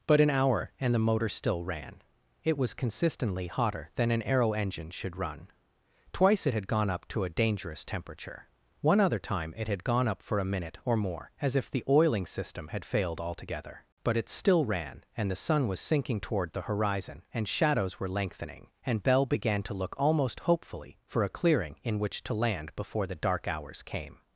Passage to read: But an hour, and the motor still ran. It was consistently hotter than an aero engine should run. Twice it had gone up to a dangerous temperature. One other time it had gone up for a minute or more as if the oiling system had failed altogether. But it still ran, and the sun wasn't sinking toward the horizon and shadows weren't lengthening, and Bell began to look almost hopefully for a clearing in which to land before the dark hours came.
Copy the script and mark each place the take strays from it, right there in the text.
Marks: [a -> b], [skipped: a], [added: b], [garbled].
But an hour, and the motor still ran. It was consistently hotter than an aero engine should run. Twice it had gone up to a dangerous temperature. One other time it had gone up for a minute or more as if the oiling system had failed altogether. But it still ran, and the sun [wasn't -> was] sinking toward the horizon and shadows [weren't -> were] lengthening, and Bell began to look almost hopefully for a clearing in which to land before the dark hours came.